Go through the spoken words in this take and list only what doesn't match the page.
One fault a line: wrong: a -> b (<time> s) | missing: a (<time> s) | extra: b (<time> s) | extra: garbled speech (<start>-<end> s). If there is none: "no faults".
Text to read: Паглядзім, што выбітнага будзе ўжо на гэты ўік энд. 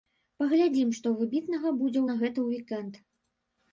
missing: ўжо (2.0 s)